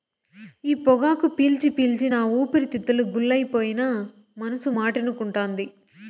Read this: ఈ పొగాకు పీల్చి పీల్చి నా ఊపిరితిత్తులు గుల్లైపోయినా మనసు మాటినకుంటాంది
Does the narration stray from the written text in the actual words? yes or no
no